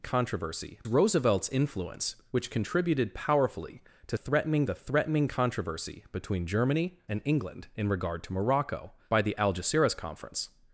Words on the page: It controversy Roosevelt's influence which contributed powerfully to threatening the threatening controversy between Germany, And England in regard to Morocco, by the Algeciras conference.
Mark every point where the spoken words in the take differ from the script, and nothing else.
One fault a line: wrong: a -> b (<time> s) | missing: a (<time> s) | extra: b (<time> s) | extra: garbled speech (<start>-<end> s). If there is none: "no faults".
no faults